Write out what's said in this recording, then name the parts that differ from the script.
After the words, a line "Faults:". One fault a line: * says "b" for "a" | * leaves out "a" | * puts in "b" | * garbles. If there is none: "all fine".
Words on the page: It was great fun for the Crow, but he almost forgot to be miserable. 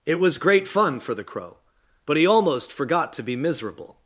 It was great fun for the Crow, but he almost forgot to be miserable.
Faults:
all fine